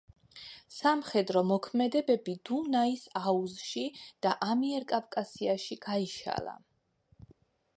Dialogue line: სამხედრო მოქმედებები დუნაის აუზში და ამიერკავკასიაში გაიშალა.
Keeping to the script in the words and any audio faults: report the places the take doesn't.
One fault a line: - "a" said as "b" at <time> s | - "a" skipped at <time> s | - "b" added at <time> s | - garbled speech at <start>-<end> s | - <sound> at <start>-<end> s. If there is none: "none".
none